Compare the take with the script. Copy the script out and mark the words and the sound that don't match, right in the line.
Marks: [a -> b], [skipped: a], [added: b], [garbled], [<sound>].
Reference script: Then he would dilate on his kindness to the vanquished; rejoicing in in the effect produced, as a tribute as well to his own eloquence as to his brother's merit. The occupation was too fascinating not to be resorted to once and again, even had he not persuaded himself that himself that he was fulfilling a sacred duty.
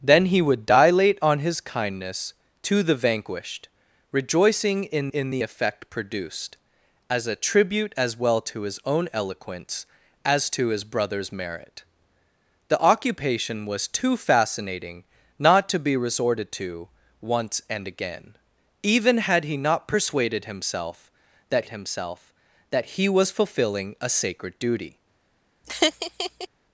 Then he would dilate on his kindness to the vanquished; rejoicing in in the effect produced, as a tribute as well to his own eloquence as to his brother's merit. The occupation was too fascinating not to be resorted to once and again, even had he not persuaded himself that himself that he was fulfilling a sacred duty. [laugh]